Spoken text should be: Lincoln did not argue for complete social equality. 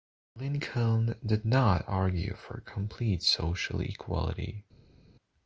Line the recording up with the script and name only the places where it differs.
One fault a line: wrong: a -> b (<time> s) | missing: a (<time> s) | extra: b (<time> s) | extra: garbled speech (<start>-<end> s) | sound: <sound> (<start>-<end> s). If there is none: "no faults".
no faults